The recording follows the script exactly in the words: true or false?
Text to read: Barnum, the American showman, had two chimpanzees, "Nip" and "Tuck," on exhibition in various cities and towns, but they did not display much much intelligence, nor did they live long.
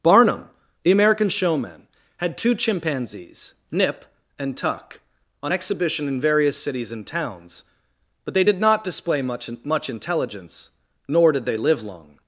true